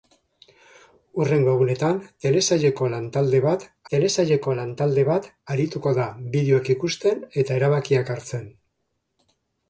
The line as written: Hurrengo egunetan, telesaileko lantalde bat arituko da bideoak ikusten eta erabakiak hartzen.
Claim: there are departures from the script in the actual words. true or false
true